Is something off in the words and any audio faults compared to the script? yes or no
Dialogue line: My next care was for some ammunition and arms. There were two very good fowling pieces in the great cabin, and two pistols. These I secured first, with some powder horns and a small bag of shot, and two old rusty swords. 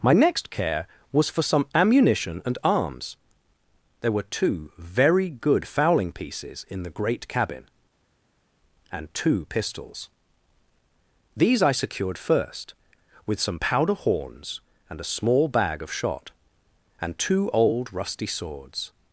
no